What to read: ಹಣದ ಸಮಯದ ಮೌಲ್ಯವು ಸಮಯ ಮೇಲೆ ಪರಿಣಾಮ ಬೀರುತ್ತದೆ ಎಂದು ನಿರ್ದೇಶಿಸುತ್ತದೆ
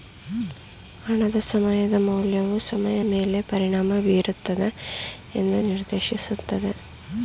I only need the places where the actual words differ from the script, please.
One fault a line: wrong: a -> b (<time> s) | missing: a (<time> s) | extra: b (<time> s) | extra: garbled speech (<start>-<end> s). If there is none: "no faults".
no faults